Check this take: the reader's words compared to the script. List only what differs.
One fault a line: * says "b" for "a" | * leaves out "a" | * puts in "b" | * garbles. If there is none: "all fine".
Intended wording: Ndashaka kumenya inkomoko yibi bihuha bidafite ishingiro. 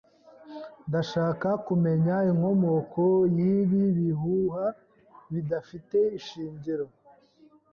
all fine